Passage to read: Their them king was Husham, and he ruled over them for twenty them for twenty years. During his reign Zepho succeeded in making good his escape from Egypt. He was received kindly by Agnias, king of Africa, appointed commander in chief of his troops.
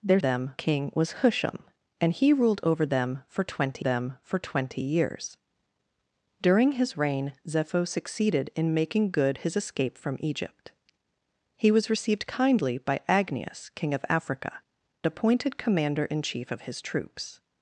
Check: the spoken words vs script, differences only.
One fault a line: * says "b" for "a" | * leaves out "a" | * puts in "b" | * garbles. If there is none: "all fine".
all fine